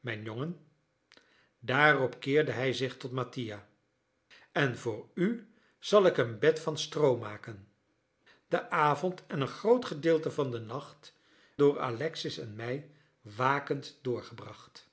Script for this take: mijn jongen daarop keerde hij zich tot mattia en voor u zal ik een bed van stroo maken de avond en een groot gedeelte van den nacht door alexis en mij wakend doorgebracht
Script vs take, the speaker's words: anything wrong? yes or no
no